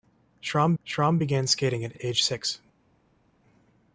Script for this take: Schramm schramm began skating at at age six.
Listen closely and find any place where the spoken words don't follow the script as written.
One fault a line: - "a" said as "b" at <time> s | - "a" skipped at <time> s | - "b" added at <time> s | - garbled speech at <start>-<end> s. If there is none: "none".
none